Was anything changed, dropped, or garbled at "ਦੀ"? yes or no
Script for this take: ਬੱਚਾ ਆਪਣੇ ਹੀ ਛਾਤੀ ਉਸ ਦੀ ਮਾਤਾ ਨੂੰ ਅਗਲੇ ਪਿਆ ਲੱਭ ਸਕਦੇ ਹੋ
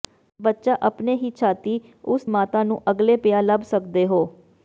yes